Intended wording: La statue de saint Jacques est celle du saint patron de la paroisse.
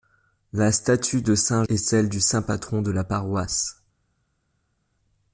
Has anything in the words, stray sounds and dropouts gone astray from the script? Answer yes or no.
yes